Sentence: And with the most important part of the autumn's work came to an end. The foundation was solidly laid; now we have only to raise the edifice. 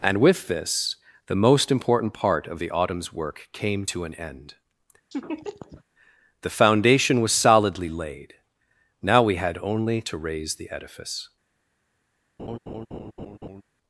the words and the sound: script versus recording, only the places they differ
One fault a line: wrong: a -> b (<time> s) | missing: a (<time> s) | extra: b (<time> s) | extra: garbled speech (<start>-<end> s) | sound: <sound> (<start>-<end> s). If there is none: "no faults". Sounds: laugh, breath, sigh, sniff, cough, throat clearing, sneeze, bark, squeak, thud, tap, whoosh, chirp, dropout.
extra: this (0.5 s)
sound: laugh (5.1-5.8 s)
wrong: have -> had (9.3 s)
sound: laugh (12.4-13.6 s)